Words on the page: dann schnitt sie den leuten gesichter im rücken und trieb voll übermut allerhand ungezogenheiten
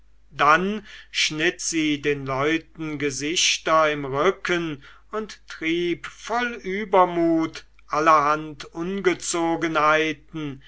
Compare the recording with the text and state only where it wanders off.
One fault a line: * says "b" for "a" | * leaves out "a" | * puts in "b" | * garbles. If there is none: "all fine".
all fine